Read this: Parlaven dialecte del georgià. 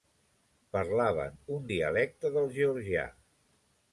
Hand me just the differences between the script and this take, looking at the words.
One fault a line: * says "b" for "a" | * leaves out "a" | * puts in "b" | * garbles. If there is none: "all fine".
* puts in "un"